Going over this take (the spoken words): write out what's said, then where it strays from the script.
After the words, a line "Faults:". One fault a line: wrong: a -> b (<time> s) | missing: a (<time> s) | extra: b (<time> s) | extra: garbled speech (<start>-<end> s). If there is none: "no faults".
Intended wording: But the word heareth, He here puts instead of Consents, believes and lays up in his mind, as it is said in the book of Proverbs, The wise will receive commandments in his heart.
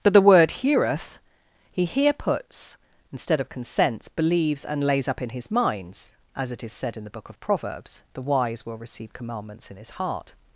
But the word heareth, He here puts instead of Consents, believes and lays up in his minds, as it is said in the book of Proverbs, The wise will receive commandments in his heart.
Faults:
wrong: mind -> minds (5.5 s)